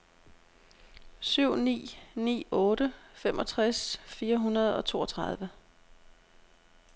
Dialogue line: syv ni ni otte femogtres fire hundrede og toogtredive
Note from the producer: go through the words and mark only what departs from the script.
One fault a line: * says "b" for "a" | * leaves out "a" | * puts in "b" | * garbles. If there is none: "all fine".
all fine